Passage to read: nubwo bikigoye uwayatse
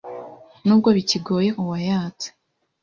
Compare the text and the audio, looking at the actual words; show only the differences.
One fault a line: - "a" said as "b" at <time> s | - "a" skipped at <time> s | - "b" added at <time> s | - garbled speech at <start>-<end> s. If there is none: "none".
none